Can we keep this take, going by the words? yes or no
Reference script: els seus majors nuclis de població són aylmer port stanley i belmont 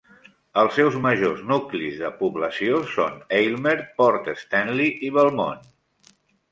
yes